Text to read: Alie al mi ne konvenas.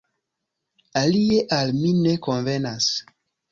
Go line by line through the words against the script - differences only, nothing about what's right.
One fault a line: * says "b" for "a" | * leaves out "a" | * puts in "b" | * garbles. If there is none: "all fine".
all fine